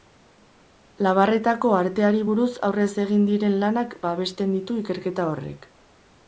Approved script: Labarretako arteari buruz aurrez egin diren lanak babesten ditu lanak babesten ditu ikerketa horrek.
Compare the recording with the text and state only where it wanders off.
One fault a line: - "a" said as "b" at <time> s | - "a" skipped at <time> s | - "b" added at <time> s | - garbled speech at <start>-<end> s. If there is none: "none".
- "lanak babesten ditu" skipped at 4.8 s